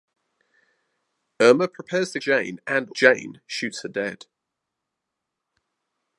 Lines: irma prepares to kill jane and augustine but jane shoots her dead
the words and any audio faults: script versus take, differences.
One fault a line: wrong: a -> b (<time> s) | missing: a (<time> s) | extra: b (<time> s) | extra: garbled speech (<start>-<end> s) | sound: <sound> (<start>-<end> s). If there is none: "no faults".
missing: kill (2.2 s)
missing: augustine but (2.9 s)